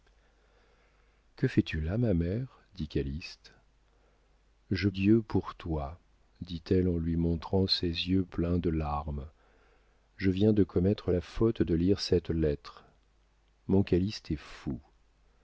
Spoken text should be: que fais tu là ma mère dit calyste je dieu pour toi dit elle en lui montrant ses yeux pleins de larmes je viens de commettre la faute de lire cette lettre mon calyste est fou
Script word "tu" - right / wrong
right